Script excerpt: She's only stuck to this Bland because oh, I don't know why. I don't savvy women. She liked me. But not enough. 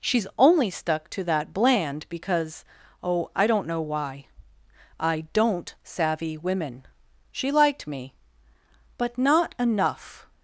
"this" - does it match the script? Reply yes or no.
no